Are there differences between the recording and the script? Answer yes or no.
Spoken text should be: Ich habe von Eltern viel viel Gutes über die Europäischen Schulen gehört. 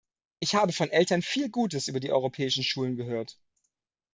yes